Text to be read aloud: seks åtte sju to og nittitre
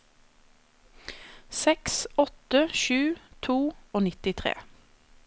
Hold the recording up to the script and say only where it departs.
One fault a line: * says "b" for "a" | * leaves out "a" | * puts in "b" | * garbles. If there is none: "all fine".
all fine